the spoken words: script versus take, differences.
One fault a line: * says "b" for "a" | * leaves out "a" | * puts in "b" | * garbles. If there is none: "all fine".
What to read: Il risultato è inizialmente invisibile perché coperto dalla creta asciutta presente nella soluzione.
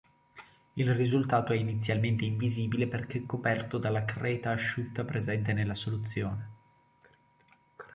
all fine